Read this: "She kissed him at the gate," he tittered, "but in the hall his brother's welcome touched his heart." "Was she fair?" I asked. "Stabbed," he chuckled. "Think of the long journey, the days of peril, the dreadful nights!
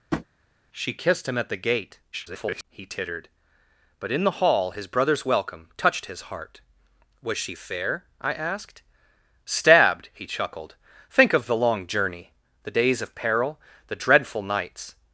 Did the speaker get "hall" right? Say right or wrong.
right